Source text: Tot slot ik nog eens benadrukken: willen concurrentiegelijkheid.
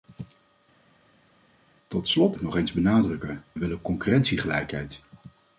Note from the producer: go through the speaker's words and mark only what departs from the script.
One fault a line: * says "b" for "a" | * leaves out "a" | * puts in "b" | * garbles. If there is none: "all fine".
all fine